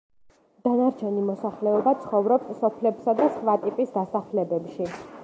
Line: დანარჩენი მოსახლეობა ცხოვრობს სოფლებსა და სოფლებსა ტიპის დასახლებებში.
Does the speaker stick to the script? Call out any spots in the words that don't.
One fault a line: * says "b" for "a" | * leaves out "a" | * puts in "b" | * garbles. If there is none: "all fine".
* says "სხვა" for "სოფლებსა"